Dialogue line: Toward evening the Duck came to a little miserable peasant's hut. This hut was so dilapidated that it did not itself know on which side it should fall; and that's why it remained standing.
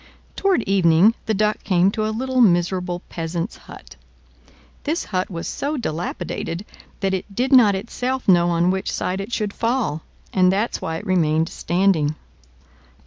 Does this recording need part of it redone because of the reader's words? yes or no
no